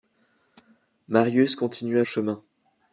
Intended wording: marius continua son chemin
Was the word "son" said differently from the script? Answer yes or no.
yes